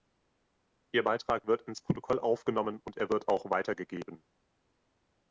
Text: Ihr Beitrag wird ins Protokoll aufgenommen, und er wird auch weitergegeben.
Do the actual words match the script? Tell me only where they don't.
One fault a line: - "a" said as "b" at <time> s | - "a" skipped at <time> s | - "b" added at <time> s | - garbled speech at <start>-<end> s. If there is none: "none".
none